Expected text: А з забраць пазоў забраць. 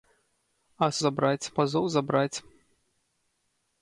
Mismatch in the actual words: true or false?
false